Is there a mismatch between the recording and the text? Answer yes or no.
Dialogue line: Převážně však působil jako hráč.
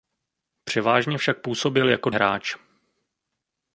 no